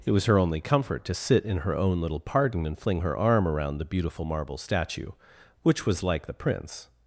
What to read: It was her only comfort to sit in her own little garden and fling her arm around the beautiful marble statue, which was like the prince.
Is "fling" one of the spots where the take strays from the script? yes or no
no